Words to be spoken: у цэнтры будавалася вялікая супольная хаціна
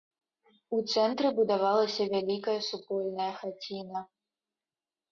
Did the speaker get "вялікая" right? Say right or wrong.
right